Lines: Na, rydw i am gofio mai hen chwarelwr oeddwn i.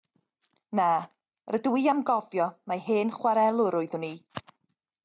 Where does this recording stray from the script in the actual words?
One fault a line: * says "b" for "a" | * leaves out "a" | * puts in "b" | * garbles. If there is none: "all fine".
all fine